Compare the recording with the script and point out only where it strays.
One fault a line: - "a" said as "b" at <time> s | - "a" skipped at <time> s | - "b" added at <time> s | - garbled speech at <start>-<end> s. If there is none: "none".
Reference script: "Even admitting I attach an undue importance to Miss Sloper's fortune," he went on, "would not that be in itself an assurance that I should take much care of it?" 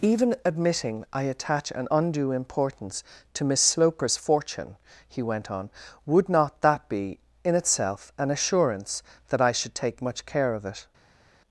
none